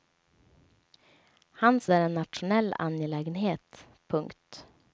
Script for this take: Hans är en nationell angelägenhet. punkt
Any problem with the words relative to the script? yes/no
no